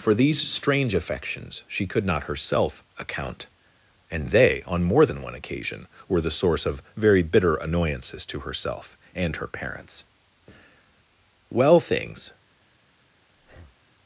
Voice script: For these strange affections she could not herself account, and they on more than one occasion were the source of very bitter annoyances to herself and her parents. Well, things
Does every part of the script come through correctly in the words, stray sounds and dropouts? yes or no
no